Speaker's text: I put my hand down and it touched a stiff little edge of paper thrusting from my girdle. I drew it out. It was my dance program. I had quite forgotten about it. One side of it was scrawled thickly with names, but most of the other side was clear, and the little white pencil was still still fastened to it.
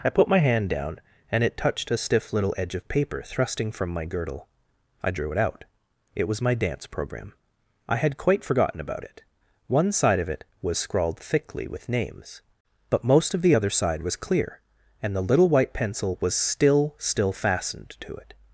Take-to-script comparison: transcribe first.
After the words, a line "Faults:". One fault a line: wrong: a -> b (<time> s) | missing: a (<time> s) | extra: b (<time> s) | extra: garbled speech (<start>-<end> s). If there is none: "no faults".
I put my hand down and it touched a stiff little edge of paper thrusting from my girdle. I drew it out. It was my dance program. I had quite forgotten about it. One side of it was scrawled thickly with names, but most of the other side was clear, and the little white pencil was still still fastened to it.
Faults:
no faults